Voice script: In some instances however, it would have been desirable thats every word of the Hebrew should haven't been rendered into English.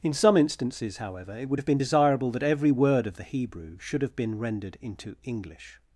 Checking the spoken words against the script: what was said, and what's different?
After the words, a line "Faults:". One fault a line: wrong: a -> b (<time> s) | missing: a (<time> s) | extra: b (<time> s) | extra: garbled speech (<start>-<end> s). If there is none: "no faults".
In some instances however, it would have been desirable that every word of the Hebrew should have been rendered into English.
Faults:
wrong: thats -> that (2.3 s)
wrong: haven't -> have (4.0 s)